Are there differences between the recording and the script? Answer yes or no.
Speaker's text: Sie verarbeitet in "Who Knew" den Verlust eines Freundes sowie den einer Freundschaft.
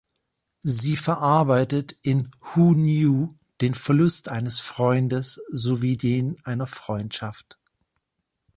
no